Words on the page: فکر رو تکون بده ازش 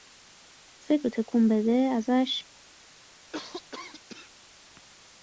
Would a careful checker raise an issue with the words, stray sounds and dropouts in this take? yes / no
yes